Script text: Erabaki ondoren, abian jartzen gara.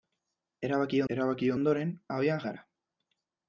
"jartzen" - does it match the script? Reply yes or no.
no